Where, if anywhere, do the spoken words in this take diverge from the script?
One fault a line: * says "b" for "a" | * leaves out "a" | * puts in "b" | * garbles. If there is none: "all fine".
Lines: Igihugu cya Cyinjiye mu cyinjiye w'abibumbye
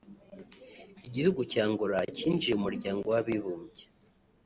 * puts in "Angola"
* says "muryango" for "cyinjiye"